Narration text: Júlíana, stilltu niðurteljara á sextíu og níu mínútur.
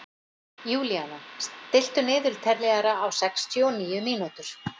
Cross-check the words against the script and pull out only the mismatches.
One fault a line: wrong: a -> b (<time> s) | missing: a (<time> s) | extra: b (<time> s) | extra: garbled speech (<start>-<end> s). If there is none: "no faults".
no faults